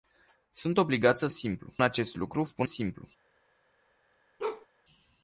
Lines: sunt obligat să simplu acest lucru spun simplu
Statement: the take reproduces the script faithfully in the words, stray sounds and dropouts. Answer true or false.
false